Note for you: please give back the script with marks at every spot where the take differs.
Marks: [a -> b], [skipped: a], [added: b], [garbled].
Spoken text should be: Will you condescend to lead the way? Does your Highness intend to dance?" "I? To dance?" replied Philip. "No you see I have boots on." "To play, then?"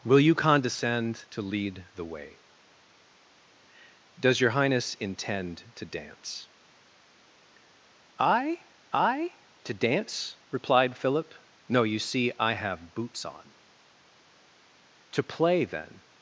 Will you condescend to lead the way? Does your Highness intend to dance?" "I? [added: I] To dance?" replied Philip. "No you see I have boots on." "To play, then?"